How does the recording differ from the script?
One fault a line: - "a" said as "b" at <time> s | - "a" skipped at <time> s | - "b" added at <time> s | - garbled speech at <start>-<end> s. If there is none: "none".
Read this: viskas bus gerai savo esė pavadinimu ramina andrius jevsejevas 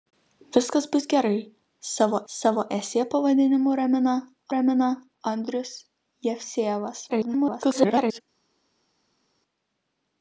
- "savo" added at 2.3 s
- "ramina" added at 4.5 s
- garbled speech at 7.1-8.2 s